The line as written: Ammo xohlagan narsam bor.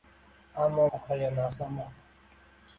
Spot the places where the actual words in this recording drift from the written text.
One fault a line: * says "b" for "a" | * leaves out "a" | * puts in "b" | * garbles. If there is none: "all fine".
all fine